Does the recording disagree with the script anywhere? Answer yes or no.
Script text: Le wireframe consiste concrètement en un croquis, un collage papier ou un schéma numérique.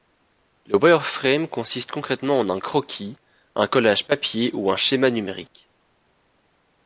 no